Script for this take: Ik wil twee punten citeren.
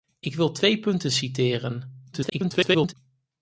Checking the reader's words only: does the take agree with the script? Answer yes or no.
no